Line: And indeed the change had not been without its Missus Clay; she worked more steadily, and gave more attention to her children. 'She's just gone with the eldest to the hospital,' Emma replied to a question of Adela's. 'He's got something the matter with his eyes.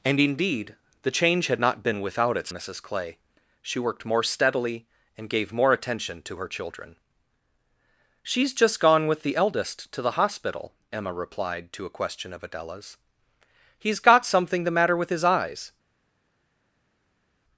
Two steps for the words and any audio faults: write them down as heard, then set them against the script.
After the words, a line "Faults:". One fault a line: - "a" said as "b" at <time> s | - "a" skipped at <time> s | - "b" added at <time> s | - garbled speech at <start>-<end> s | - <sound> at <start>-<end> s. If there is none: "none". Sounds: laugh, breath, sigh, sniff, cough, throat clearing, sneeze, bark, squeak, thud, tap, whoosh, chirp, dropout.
And indeed the change had not been without its Missus Clay; she worked more steadily, and gave more attention to her children. 'She's just gone with the eldest to the hospital,' Emma replied to a question of Adela's. 'He's got something the matter with his eyes.
Faults:
none